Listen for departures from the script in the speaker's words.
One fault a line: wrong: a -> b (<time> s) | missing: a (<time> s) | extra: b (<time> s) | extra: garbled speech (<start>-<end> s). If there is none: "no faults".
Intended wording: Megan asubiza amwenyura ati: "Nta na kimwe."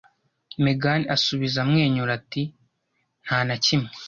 no faults